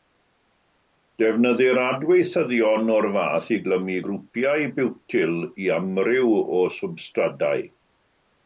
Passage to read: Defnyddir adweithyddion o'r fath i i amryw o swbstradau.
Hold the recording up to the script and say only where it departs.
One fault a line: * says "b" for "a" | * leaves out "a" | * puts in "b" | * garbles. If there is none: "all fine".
* puts in "glymu grwpiau biwtyl"